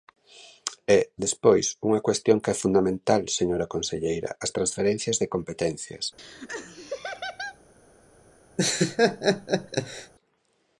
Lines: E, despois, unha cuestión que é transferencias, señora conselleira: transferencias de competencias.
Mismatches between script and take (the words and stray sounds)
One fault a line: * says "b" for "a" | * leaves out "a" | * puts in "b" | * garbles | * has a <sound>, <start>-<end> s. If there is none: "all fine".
* says "fundamental" for "transferencias"
* puts in "as"
* has a laugh, 6.2-7.6 s
* has a laugh, 8.6-10.1 s